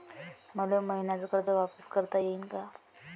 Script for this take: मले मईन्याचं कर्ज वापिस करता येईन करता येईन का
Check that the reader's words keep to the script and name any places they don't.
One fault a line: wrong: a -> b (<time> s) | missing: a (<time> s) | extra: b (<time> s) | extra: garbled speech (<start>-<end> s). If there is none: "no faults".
missing: करता येईन (2.4 s)